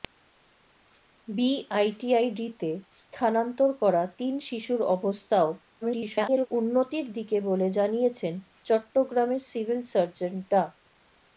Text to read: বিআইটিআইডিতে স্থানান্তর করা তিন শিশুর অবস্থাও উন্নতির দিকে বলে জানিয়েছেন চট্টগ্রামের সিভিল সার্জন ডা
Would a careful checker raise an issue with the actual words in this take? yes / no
yes